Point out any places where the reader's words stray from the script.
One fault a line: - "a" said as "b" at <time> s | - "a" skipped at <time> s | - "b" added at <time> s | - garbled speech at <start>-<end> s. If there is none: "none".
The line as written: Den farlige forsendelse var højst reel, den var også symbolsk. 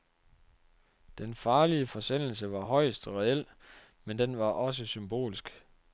- "men" added at 4.0 s